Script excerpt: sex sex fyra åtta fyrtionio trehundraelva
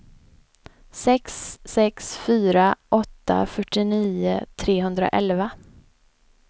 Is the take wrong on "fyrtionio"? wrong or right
right